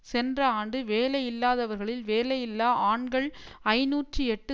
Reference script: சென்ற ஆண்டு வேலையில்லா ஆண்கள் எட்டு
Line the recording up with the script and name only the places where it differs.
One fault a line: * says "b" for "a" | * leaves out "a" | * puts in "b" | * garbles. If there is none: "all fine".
* puts in "வேலையில்லாதவர்களில்"
* puts in "ஐநூற்று"